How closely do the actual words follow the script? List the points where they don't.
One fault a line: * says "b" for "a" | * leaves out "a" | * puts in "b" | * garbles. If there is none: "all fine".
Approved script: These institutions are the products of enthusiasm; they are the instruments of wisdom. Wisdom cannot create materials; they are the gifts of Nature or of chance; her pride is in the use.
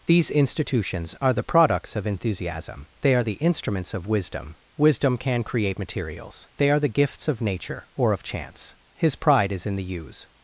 * says "can" for "cannot"
* says "his" for "her"